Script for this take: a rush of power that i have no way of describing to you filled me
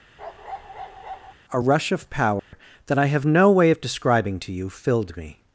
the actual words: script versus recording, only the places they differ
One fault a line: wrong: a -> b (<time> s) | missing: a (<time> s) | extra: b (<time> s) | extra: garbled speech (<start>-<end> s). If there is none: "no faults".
no faults